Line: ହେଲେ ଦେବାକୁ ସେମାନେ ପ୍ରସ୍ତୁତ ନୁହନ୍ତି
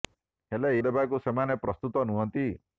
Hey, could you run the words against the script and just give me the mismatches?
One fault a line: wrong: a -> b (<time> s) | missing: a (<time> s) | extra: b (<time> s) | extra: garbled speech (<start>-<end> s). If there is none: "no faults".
no faults